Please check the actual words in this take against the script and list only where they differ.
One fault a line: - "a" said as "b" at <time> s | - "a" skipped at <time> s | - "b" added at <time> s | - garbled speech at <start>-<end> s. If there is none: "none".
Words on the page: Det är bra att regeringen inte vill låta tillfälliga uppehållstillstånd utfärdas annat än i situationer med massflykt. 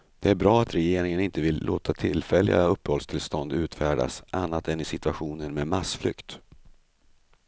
none